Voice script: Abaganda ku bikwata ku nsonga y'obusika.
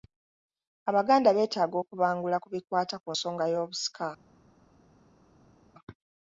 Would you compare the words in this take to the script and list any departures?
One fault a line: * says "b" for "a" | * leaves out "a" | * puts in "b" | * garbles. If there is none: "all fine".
* puts in "beetaaga okubangula"